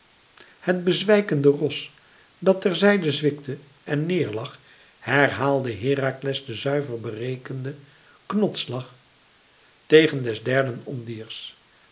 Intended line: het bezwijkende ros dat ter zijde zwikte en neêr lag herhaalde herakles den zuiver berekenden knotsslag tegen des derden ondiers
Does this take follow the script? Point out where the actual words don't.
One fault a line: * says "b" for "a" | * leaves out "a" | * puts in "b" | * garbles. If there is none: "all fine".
all fine